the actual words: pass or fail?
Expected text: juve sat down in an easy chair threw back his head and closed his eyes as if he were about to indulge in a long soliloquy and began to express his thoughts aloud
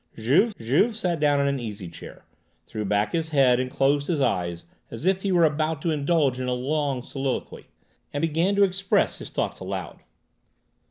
fail